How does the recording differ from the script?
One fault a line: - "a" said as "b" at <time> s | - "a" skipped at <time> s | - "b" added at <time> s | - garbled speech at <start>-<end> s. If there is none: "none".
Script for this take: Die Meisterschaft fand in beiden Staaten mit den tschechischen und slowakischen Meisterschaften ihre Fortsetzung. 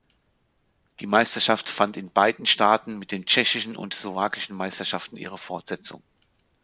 none